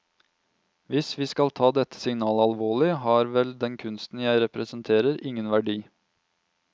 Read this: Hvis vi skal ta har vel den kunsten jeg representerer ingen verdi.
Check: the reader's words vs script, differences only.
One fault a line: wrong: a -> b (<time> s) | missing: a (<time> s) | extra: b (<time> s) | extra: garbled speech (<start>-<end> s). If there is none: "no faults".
extra: dette signalet alvorlig (1.8 s)